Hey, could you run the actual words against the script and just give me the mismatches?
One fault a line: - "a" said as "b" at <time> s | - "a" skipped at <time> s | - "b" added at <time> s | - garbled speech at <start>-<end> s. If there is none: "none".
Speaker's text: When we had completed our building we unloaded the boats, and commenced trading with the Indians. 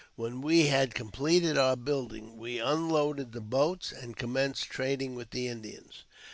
none